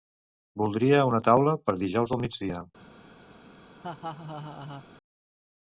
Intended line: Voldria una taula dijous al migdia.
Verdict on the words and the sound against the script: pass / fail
fail